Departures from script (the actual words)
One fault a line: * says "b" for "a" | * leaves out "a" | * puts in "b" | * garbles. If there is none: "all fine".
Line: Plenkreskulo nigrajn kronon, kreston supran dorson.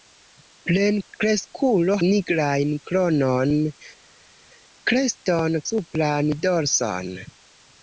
all fine